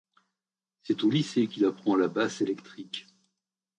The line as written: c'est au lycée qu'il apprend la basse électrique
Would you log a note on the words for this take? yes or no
no